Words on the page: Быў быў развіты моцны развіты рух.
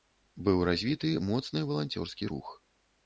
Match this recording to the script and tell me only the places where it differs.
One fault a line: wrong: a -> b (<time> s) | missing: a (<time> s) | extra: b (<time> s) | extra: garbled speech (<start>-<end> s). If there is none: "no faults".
missing: быў (0.6 s)
wrong: развіты -> валанцёрскі (1.7 s)